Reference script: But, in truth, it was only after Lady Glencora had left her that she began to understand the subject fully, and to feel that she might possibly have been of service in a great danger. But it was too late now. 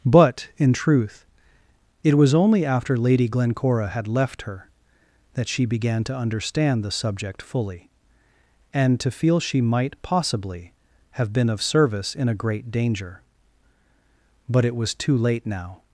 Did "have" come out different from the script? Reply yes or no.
no